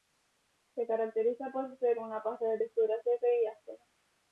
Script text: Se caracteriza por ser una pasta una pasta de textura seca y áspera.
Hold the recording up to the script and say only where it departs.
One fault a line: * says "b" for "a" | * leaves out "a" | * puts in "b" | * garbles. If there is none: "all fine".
* leaves out "una pasta"